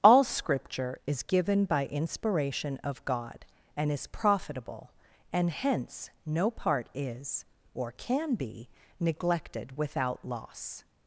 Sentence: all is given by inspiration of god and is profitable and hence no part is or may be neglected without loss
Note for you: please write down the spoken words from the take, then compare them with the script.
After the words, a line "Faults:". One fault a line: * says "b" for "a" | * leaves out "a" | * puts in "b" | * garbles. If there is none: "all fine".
all scripture is given by inspiration of god and is profitable and hence no part is or can be neglected without loss
Faults:
* puts in "scripture"
* says "can" for "may"